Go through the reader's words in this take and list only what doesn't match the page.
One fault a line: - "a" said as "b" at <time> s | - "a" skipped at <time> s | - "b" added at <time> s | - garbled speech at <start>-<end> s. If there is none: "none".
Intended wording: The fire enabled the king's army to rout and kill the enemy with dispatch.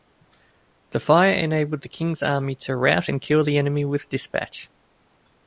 none